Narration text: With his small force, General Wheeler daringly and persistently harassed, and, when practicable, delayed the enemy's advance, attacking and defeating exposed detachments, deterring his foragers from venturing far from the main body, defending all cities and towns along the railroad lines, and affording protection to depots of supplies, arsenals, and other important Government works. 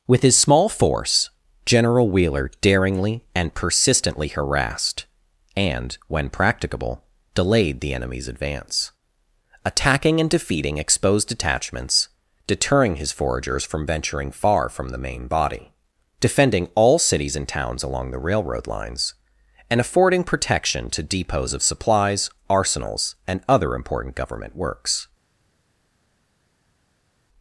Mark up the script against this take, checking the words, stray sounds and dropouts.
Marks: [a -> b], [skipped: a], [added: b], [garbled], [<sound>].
With his small force, General Wheeler daringly and persistently harassed, and, when practicable, delayed the enemy's advance, attacking and defeating exposed detachments, deterring his foragers from venturing far from the main body, defending all cities and towns along the railroad lines, and affording protection to depots of supplies, arsenals, and other important Government works.